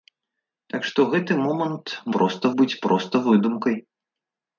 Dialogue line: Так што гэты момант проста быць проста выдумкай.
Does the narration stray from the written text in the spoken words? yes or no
no